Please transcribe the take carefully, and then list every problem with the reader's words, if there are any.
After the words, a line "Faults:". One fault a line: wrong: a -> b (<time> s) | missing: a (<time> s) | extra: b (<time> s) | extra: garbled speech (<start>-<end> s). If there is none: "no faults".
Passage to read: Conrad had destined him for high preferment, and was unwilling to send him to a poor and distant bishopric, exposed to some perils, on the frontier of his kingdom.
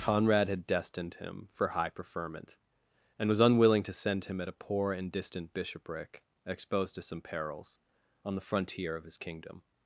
Conrad had destined him for high preferment, and was unwilling to send him at a poor and distant bishopric, exposed to some perils, on the frontier of his kingdom.
Faults:
wrong: to -> at (4.4 s)